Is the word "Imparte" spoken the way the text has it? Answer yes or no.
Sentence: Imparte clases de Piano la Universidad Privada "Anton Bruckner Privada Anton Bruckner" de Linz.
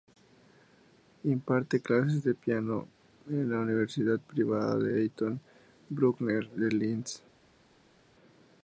yes